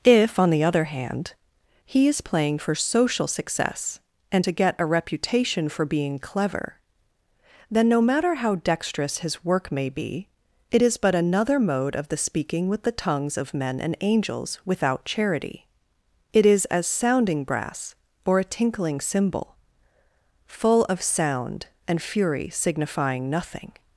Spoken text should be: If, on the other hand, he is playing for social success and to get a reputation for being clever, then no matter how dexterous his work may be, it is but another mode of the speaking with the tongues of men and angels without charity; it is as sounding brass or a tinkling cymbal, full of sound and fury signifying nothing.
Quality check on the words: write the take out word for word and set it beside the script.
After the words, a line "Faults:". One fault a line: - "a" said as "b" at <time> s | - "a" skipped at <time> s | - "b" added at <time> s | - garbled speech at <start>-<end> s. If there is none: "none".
If, on the other hand, he is playing for social success and to get a reputation for being clever, then no matter how dexterous his work may be, it is but another mode of the speaking with the tongues of men and angels without charity; it is as sounding brass or a tinkling cymbal, full of sound and fury signifying nothing.
Faults:
none